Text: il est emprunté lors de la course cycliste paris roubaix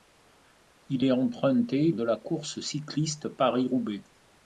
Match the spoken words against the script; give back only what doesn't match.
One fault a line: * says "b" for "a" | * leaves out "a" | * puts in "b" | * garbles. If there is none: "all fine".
* leaves out "lors"